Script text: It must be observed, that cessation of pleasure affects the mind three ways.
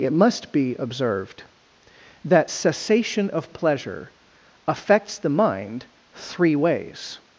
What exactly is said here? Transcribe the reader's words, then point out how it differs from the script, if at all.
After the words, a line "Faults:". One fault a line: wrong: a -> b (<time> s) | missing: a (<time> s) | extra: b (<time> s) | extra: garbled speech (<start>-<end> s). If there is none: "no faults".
It must be observed, that cessation of pleasure affects the mind three ways.
Faults:
no faults